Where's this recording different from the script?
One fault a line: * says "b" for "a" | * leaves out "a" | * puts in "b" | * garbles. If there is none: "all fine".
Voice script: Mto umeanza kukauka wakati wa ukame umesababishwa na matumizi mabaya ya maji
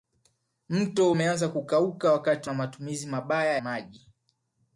* leaves out "wa ukame umesababishwa"
* leaves out "ya"